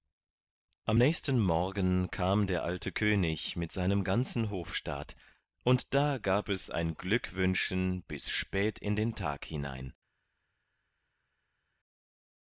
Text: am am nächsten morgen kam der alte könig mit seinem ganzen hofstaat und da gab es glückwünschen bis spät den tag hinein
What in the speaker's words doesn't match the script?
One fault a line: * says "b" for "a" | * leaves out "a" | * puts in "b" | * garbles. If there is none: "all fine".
* leaves out "am"
* puts in "ein"
* puts in "in"